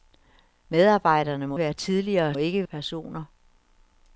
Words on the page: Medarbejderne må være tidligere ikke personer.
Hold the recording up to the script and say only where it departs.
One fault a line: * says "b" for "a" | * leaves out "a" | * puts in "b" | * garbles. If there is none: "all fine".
all fine